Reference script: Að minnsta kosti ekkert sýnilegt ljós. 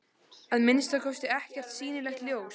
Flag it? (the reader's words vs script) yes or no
no